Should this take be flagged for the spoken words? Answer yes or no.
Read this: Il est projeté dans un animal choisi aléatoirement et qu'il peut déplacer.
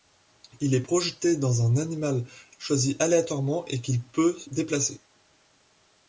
no